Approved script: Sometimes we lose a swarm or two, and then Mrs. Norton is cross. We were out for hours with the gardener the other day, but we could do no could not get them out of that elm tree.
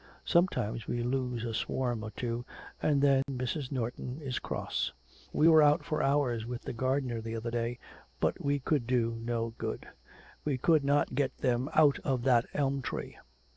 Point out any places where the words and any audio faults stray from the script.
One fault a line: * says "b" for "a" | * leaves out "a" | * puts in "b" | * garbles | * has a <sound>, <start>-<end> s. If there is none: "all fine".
* has a dropout, 3.2-3.3 s
* puts in "good we"